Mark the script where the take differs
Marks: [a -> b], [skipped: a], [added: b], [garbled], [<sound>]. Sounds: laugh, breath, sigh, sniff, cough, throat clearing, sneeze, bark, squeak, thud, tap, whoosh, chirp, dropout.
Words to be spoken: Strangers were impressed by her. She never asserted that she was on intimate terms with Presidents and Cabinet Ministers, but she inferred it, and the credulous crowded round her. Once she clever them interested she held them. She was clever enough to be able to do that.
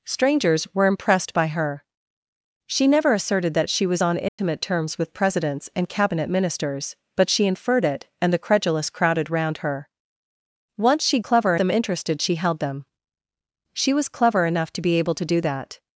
Strangers were impressed by her. She never asserted that she was on intimate [dropout] terms with Presidents and Cabinet Ministers, but she inferred it, and the credulous crowded round her. Once she clever them interested she held them. She was clever enough to be able to do that.